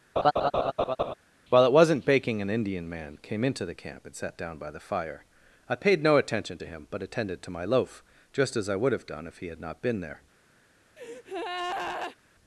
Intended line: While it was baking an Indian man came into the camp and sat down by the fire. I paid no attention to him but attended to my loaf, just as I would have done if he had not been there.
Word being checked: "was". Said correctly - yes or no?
no